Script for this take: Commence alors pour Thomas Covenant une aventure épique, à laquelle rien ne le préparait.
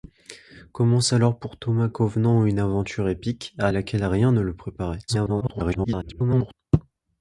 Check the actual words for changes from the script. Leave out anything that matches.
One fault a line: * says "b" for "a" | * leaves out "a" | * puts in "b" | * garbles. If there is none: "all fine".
* garbles